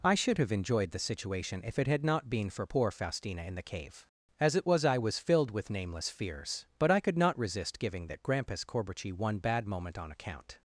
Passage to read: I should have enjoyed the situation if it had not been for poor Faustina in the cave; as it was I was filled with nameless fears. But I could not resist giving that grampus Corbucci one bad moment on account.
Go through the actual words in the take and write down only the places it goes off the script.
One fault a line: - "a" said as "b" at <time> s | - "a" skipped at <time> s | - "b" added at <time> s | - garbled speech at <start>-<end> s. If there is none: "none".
none